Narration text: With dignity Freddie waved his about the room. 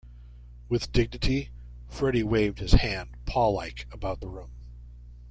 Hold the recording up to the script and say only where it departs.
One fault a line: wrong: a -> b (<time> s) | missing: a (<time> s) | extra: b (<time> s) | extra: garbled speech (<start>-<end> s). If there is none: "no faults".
extra: hand paw like (2.7 s)